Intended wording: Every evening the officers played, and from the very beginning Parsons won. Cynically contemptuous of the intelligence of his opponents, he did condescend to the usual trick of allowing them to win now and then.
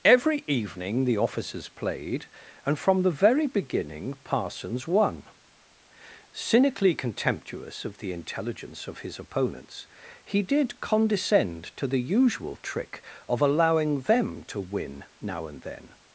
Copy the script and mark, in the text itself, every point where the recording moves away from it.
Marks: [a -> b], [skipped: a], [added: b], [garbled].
Every evening the officers played, and from the very beginning Parsons won. Cynically contemptuous of the intelligence of his opponents, he did condescend to the usual trick of allowing them to win now and then.